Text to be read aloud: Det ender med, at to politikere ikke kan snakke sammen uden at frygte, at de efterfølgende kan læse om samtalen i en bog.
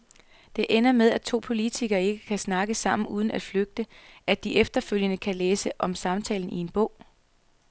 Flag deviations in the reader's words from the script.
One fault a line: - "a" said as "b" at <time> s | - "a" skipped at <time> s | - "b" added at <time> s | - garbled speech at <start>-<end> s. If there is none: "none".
none